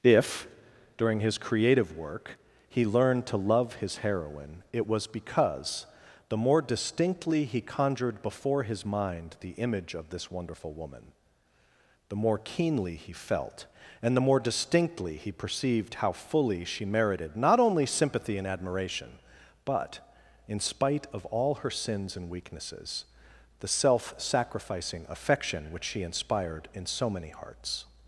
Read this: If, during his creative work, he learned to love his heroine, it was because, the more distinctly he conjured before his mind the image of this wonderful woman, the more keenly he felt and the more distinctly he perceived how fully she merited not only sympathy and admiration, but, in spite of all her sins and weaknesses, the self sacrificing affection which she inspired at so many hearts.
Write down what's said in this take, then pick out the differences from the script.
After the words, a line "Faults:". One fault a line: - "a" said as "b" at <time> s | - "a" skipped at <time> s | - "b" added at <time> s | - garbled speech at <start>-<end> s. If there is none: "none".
If, during his creative work, he learned to love his heroine, it was because, the more distinctly he conjured before his mind the image of this wonderful woman, the more keenly he felt and the more distinctly he perceived how fully she merited not only sympathy and admiration, but, in spite of all her sins and weaknesses, the self sacrificing affection which she inspired in so many hearts.
Faults:
- "at" said as "in" at 26.7 s